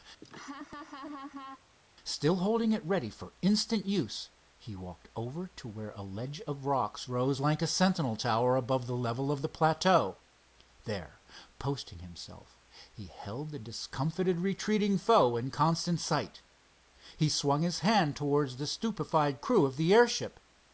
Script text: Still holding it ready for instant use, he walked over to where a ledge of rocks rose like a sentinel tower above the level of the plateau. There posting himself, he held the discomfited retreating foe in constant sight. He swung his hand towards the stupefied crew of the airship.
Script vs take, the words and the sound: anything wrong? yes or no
yes